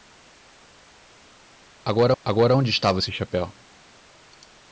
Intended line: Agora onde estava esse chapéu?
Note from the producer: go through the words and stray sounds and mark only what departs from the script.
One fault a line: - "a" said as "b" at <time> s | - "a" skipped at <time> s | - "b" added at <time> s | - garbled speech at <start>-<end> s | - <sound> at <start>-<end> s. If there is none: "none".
- "agora" added at 2.2 s